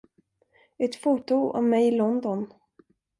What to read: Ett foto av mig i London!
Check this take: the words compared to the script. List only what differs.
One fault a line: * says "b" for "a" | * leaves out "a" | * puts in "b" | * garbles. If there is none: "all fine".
all fine